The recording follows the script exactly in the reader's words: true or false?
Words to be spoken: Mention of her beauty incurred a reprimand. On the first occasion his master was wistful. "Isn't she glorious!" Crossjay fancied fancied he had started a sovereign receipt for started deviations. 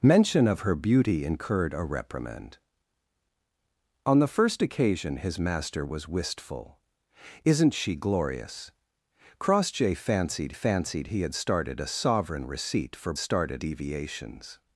true